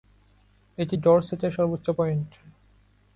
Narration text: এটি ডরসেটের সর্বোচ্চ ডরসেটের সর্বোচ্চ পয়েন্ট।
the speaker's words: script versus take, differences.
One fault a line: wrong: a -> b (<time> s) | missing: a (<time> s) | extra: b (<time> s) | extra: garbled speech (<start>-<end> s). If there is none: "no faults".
missing: ডরসেটের সর্বোচ্চ (1.9 s)